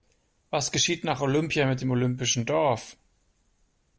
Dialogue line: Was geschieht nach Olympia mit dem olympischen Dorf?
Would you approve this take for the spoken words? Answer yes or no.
yes